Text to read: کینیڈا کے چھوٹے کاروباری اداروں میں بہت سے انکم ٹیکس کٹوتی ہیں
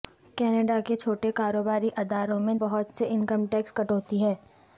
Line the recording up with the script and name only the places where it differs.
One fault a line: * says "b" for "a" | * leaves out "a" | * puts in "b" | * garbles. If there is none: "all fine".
all fine